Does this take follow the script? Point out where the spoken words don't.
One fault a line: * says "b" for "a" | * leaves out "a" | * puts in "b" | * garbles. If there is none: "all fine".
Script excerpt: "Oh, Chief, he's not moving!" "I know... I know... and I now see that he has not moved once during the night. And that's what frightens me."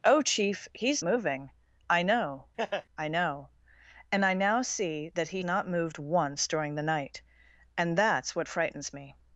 * leaves out "not"
* leaves out "has"